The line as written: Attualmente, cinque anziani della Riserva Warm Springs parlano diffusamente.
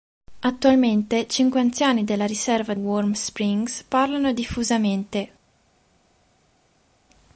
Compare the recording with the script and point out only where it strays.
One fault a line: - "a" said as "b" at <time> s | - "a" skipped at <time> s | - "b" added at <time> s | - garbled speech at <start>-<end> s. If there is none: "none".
none